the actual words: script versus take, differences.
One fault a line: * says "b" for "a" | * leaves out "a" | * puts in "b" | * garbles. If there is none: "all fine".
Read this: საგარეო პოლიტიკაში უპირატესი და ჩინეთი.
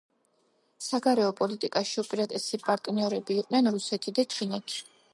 * puts in "პარტნიორები იყვნენ რუსეთი"